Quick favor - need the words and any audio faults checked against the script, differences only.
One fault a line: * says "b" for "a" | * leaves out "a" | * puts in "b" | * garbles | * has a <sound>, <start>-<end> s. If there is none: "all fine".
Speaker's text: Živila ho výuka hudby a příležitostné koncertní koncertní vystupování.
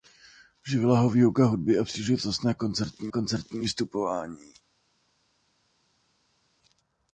all fine